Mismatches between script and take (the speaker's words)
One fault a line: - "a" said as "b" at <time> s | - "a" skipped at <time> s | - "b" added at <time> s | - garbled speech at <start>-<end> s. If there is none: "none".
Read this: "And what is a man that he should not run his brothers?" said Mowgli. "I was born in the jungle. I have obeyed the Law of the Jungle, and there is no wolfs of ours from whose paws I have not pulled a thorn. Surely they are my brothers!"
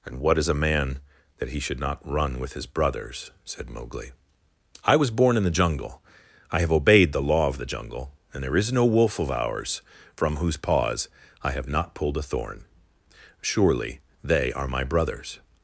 - "with" added at 2.4 s
- "wolfs" said as "wolf" at 8.9 s